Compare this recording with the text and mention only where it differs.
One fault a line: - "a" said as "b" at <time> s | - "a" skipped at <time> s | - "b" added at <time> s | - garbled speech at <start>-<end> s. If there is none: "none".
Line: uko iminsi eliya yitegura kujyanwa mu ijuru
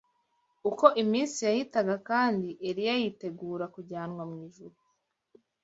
- "yahitaga kandi" added at 1.5 s